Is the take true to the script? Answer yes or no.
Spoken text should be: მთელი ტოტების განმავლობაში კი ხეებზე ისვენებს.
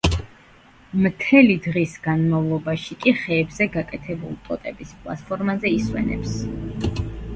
no